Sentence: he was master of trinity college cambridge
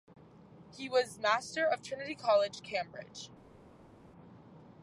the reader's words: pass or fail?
pass